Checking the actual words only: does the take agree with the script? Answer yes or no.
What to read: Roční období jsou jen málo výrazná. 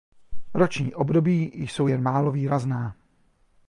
yes